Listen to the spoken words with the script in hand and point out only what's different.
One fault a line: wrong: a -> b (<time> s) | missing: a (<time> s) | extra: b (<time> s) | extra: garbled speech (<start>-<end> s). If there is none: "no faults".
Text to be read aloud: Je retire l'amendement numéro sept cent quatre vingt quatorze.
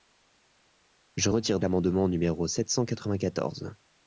no faults